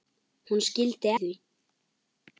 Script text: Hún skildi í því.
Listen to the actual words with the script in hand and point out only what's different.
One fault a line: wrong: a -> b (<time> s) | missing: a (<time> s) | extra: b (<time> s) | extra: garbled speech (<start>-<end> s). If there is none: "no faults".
no faults